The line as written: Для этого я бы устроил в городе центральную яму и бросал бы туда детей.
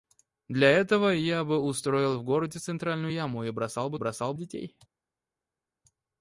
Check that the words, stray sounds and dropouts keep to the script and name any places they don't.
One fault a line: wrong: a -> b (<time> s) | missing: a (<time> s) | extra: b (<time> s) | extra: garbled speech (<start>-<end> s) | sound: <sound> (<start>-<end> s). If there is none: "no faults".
wrong: туда -> бросал (4.0 s)